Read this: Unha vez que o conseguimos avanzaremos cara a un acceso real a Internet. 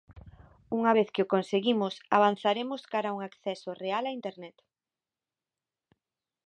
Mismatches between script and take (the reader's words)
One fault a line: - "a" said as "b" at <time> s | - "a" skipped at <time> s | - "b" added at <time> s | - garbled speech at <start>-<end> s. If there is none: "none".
none